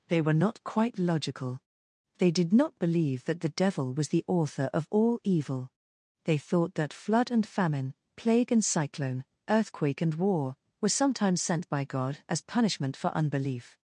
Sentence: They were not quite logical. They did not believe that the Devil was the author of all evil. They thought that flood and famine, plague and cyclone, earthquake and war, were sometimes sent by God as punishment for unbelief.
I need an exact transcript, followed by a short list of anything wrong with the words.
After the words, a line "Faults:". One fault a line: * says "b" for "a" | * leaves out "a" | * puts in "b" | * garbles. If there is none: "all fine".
They were not quite logical. They did not believe that the Devil was the author of all evil. They thought that flood and famine, plague and cyclone, earthquake and war, were sometimes sent by God as punishment for unbelief.
Faults:
all fine